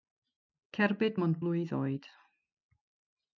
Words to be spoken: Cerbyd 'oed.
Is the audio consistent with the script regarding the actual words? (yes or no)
no